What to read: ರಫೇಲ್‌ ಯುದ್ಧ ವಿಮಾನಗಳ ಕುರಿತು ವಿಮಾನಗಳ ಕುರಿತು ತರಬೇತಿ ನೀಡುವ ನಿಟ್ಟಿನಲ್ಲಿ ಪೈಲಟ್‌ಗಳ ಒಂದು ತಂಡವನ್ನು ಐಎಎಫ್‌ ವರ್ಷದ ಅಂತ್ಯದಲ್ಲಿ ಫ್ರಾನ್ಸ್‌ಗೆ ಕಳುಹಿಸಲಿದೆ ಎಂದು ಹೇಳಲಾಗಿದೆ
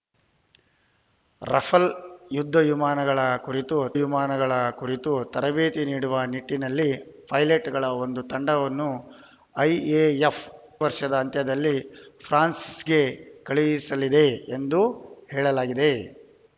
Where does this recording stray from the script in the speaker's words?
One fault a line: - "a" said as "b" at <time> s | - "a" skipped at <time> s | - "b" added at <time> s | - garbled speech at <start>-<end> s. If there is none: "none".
none